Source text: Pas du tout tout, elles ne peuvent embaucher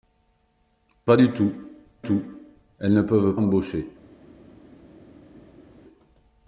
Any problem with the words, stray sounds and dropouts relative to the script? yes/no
no